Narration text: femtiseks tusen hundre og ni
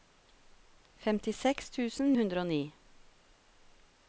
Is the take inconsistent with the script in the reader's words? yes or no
no